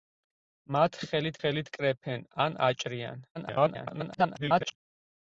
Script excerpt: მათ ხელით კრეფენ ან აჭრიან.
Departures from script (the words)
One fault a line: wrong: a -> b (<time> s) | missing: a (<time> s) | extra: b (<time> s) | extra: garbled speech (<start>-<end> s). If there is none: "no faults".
extra: ხელით (1.4 s)
extra: garbled speech (3.3-4.8 s)